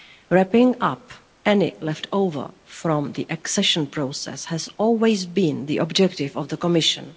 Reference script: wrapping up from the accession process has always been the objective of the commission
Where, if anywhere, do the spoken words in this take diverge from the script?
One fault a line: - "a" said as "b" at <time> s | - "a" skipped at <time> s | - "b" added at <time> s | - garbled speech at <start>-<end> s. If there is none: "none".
- "any leftover" added at 1.4 s